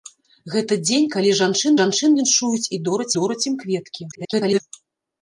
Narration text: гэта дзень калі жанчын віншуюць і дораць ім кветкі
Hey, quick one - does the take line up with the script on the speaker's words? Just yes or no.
no